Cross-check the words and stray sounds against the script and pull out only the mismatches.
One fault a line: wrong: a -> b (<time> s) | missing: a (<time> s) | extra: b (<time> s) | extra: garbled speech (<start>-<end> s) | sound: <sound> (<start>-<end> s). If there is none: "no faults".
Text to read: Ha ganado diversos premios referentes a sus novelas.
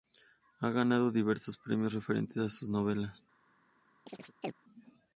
sound: chirp (4.1-4.5 s)